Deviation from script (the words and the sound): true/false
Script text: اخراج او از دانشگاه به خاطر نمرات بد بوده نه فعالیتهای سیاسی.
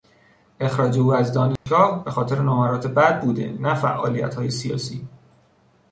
true